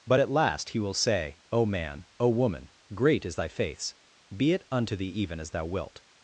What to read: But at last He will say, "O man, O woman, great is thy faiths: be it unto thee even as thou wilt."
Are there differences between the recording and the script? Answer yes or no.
no